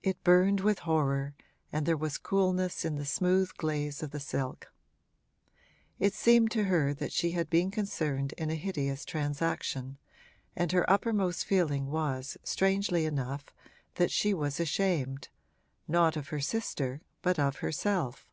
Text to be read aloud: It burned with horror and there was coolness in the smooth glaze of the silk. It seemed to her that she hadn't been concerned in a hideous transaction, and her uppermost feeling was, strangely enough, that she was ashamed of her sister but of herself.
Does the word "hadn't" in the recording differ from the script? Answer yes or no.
yes